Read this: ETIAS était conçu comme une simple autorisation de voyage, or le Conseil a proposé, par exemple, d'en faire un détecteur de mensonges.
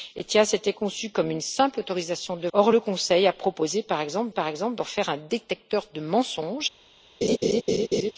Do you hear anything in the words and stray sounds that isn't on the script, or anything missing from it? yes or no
yes